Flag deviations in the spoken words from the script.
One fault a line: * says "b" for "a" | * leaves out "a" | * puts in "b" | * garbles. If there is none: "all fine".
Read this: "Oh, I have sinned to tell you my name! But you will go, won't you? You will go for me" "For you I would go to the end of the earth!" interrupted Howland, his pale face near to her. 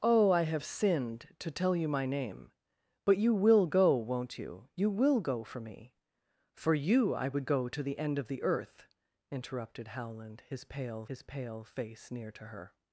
* puts in "his pale"